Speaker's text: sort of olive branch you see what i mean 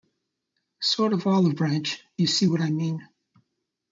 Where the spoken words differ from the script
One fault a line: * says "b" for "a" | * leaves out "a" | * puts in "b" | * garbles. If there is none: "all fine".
all fine